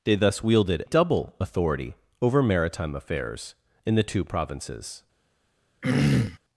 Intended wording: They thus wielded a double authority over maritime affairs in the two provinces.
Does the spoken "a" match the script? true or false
false